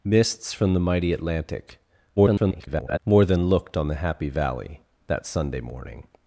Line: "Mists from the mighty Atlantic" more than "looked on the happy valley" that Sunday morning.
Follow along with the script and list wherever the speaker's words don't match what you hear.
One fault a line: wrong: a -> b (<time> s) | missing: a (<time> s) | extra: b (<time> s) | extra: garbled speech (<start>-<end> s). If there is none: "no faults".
extra: garbled speech (2.2-3.0 s)